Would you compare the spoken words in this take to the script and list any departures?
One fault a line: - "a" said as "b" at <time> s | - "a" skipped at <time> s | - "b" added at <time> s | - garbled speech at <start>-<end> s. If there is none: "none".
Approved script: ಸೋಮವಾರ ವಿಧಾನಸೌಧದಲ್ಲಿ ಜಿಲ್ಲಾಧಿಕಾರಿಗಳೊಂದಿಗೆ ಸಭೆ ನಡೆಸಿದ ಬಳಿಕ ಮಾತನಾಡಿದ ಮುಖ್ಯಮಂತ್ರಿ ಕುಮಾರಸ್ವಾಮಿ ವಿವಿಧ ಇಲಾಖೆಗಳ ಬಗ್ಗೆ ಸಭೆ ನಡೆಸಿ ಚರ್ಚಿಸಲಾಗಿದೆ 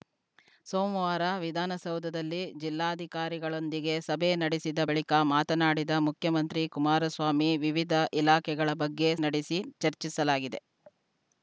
- "ಸಭೆ" skipped at 9.1 s